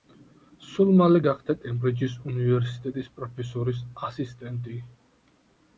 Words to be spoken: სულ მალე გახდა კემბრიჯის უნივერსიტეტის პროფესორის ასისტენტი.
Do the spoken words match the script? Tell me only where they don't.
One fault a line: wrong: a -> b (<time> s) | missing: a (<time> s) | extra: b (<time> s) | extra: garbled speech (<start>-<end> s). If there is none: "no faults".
no faults